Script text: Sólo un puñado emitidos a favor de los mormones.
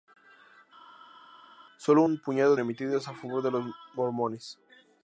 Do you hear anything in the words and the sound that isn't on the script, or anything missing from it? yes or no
no